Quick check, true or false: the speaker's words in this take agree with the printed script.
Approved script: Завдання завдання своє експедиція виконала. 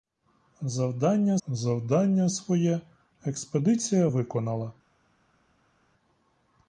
true